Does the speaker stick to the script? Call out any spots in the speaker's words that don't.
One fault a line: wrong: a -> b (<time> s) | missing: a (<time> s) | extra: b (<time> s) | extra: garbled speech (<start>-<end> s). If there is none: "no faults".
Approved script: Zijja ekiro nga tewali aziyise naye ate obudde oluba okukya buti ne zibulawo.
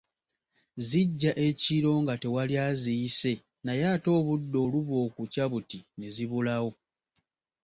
no faults